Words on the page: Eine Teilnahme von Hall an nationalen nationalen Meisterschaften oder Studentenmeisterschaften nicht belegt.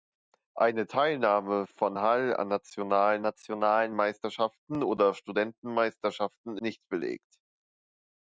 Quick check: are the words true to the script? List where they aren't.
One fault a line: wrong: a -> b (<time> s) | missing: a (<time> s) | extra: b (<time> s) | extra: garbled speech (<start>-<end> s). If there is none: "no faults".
no faults